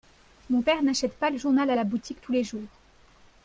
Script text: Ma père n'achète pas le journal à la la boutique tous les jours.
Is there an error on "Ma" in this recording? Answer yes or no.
yes